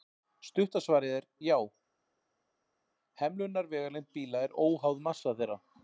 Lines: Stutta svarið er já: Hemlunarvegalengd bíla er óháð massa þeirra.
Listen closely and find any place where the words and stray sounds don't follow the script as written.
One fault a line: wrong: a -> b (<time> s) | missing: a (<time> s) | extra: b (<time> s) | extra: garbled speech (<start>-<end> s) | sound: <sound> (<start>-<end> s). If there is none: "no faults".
no faults